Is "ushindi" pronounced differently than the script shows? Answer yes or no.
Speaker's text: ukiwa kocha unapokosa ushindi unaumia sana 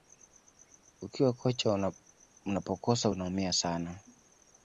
yes